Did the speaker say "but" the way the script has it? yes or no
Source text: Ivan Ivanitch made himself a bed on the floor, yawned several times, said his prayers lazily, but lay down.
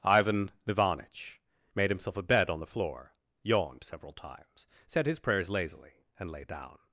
no